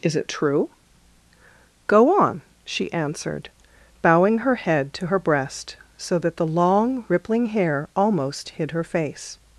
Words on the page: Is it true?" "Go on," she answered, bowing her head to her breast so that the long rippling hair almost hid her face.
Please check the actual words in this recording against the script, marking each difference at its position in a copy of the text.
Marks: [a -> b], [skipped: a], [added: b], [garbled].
Is it true?" "Go on," she answered, bowing her head to her breast so that the long rippling hair almost hid her face.